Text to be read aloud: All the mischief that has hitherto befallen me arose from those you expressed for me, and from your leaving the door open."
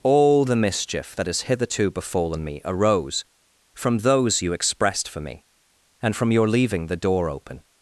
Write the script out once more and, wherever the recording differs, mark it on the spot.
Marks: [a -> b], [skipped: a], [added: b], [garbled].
All the mischief that has hitherto befallen me arose from those you expressed for me, and from your leaving the door open."